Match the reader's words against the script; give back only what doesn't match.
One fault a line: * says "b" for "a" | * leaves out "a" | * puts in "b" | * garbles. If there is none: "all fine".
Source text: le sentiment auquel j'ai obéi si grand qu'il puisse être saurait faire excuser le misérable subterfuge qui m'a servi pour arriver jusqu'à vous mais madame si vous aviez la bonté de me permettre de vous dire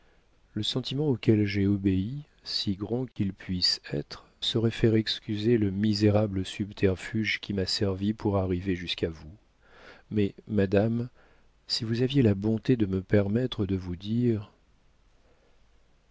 all fine